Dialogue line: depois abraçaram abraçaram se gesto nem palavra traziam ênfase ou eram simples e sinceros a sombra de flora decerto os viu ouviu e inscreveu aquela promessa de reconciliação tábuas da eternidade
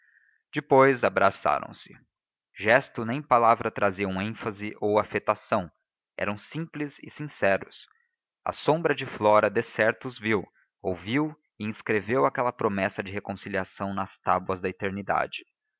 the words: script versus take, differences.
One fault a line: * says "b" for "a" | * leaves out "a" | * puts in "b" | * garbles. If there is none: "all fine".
* leaves out "abraçaram"
* puts in "afetação"
* puts in "nas"